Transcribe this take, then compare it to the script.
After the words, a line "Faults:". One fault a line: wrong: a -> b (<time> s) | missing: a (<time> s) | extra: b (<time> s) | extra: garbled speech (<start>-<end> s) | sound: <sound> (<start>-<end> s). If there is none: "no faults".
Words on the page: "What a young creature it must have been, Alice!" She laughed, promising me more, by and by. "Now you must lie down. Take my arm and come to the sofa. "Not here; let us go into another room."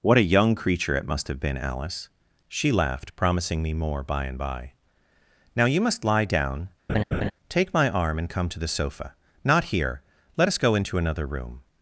"What a young creature it must have been, Alice!" She laughed, promising me more, by and by. "Now you must lie down. Take my arm and come to the sofa. "Not here; let us go into another room."
Faults:
sound: laugh (6.9-7.3 s)